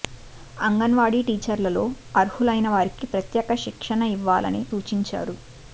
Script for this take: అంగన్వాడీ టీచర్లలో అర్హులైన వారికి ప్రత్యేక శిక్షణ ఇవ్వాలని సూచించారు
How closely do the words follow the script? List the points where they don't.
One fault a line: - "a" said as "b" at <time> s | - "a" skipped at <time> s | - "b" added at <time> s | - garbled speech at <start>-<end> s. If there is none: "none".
none